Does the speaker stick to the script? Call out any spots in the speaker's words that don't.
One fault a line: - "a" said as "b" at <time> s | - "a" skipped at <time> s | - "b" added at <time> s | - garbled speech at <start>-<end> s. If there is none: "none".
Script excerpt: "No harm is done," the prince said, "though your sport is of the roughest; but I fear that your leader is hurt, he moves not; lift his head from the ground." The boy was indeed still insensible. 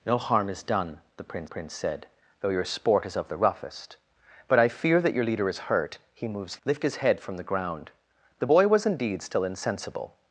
- "prince" added at 1.4 s
- "not" skipped at 6.6 s